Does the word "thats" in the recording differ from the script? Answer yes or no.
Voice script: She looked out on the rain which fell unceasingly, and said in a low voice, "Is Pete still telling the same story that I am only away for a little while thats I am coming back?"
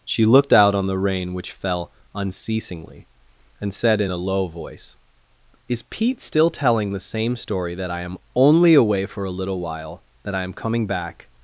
yes